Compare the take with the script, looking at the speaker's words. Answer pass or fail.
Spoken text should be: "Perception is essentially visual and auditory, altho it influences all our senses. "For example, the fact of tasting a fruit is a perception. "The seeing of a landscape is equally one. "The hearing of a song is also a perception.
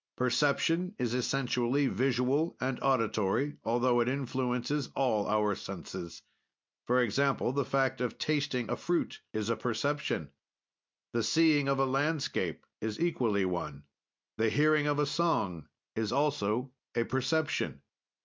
pass